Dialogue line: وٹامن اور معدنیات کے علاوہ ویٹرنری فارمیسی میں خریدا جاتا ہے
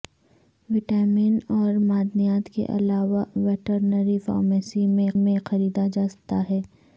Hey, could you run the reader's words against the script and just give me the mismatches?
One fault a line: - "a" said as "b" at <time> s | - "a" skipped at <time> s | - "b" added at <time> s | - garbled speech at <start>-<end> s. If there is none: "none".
- "میں" added at 5.2 s